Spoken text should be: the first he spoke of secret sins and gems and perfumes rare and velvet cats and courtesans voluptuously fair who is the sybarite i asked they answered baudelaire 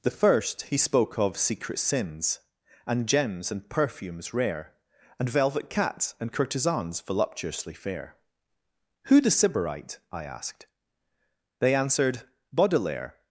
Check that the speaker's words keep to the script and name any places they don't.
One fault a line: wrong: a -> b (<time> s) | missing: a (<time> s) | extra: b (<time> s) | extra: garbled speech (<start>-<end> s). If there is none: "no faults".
missing: is (9.2 s)